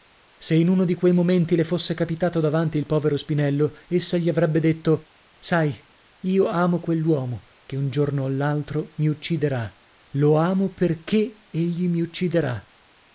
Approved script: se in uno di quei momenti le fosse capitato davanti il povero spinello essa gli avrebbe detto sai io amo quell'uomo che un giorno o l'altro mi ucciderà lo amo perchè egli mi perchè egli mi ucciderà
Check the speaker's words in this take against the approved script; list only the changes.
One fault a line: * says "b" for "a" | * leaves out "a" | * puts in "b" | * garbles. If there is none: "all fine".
* leaves out "perchè egli mi"